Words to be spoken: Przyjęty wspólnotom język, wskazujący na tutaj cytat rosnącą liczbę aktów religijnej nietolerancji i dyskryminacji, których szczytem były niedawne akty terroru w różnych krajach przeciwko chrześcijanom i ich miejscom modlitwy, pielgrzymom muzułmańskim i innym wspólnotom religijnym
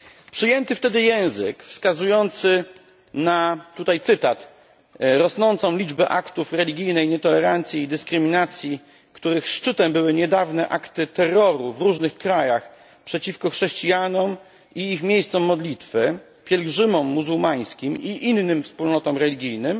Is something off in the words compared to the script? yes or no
yes